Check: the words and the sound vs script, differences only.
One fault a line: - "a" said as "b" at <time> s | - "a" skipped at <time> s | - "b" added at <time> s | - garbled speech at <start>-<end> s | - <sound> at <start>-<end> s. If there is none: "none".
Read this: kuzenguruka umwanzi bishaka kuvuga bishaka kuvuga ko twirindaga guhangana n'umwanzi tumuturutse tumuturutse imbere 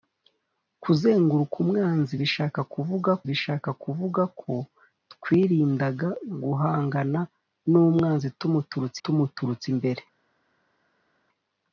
none